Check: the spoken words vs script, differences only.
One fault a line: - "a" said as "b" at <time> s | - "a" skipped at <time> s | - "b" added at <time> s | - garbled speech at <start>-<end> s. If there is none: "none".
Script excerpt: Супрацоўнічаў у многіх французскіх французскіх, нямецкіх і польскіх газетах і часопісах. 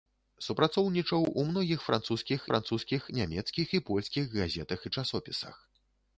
none